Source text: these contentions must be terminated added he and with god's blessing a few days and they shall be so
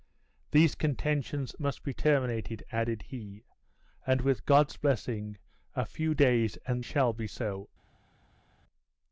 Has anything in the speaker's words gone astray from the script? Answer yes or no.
yes